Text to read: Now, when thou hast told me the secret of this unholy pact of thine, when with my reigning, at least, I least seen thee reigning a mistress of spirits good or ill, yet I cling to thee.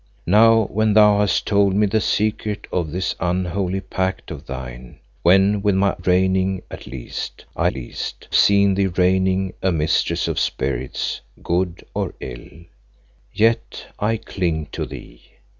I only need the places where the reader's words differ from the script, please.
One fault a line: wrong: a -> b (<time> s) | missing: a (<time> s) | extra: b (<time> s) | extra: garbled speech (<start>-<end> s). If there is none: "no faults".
no faults